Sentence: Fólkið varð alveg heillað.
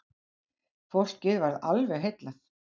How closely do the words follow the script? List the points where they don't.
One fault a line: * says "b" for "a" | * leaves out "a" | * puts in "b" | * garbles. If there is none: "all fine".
all fine